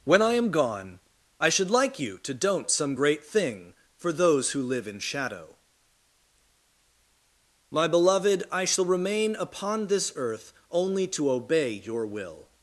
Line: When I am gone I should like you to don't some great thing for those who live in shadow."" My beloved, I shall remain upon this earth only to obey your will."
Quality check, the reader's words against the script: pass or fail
pass